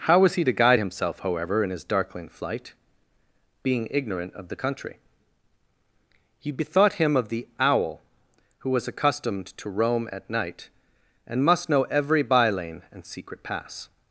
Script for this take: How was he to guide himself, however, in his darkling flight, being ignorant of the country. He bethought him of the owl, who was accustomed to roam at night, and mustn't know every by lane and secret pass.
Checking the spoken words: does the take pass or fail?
fail